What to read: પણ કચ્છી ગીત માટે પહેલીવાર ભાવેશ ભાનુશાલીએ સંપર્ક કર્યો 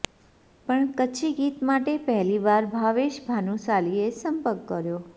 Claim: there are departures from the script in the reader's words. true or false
false